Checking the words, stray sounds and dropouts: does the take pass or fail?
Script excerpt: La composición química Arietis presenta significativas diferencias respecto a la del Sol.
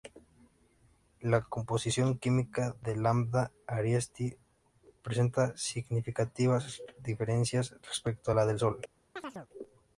fail